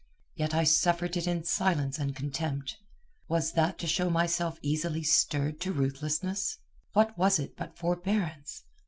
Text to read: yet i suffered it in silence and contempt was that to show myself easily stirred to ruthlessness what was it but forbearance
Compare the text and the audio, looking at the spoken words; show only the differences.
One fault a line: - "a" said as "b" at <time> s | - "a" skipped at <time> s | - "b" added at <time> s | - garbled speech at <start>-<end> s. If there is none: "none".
none